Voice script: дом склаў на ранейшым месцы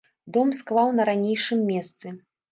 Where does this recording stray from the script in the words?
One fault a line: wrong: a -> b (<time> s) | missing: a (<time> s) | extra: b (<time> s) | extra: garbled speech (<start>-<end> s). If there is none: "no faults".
no faults